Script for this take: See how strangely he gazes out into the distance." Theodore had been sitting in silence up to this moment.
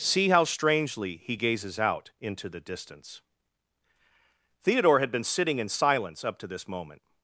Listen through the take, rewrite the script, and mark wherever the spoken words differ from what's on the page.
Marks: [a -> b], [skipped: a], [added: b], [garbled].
See how strangely he gazes out into the distance." Theodore had been sitting in silence up to this moment.